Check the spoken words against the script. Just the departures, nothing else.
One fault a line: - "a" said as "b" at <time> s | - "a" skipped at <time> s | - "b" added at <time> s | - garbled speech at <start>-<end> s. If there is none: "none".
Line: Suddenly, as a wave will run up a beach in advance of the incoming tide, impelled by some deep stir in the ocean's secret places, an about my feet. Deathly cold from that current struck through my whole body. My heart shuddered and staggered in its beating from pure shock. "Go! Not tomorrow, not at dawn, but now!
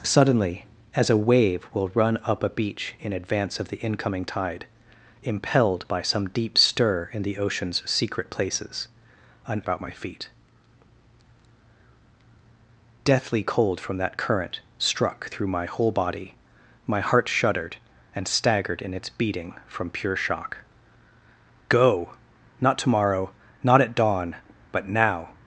none